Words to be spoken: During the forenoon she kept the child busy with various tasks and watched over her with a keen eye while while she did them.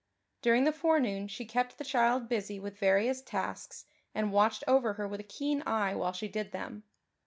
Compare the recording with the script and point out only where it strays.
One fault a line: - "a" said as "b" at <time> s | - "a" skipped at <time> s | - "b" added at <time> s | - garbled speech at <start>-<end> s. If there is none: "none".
- "while" skipped at 6.1 s